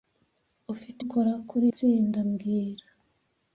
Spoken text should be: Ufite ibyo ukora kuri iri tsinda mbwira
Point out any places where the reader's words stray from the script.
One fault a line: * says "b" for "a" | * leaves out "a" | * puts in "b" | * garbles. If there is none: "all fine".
* leaves out "ibyo"
* leaves out "iri"